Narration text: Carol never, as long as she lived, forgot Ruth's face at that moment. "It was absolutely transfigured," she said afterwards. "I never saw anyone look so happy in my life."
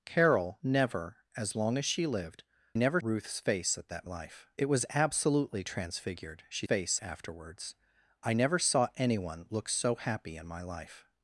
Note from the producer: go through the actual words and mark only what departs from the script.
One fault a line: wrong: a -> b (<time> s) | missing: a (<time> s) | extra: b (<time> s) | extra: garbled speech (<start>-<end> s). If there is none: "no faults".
wrong: forgot -> never (2.7 s)
wrong: moment -> life (4.0 s)
wrong: said -> face (6.6 s)